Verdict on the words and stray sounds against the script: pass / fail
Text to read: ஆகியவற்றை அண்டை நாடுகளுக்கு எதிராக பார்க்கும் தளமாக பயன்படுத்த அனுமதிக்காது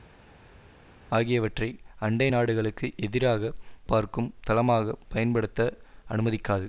pass